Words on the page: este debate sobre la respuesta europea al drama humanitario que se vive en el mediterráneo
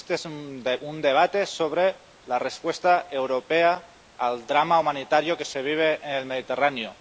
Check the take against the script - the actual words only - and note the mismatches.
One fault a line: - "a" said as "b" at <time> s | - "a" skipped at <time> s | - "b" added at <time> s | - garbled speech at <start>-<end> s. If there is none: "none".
- "es un" added at 0.1 s